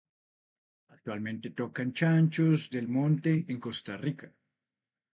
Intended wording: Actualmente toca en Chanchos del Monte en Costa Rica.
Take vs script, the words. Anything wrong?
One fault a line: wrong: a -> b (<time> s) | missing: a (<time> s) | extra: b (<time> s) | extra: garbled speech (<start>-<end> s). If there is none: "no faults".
no faults